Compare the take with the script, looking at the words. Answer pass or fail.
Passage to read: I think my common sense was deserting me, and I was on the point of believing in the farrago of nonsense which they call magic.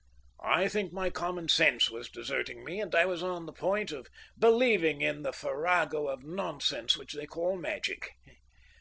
pass